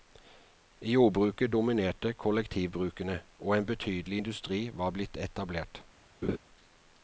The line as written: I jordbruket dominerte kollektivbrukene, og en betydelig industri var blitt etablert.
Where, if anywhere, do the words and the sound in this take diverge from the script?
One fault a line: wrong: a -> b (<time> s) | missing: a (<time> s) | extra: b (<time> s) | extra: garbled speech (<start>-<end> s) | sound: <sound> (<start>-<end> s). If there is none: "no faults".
sound: laugh (6.2-6.4 s)